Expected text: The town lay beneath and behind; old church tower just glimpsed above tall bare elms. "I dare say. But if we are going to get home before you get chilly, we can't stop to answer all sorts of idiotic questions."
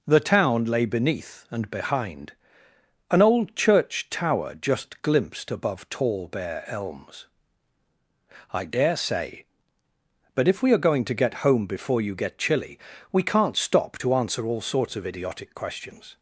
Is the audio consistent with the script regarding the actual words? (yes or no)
no